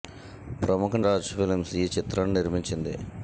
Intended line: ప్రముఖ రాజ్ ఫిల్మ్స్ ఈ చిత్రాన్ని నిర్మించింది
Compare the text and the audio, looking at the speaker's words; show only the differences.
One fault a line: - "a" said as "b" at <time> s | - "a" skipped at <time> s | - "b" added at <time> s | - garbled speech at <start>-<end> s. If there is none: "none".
none